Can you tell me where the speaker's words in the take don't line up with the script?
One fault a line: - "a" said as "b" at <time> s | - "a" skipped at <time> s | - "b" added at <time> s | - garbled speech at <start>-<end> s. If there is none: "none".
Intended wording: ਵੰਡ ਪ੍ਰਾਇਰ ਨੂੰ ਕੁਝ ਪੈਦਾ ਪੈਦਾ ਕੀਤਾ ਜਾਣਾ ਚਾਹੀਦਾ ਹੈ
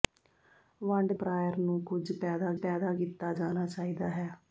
none